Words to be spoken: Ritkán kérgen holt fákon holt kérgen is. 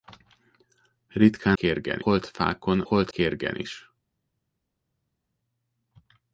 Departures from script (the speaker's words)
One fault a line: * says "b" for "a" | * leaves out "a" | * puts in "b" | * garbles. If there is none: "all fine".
all fine